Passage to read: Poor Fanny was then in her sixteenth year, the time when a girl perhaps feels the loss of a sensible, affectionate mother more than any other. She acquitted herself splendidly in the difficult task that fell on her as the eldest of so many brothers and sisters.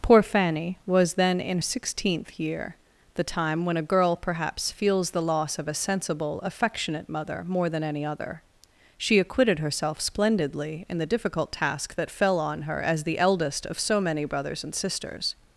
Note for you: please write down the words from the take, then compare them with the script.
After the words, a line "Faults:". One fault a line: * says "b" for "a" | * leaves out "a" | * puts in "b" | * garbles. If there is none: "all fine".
Poor Fanny was then in sixteenth year, the time when a girl perhaps feels the loss of a sensible, affectionate mother more than any other. She acquitted herself splendidly in the difficult task that fell on her as the eldest of so many brothers and sisters.
Faults:
* leaves out "her"